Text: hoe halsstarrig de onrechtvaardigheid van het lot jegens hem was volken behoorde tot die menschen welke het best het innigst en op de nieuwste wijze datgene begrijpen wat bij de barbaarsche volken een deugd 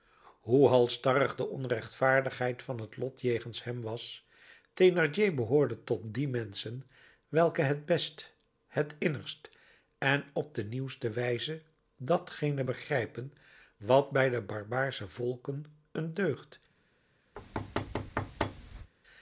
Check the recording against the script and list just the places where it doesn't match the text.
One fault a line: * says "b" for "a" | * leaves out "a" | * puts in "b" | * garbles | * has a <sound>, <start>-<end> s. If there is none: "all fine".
* says "thénardier" for "volken"
* has a thud, 17.4-18.9 s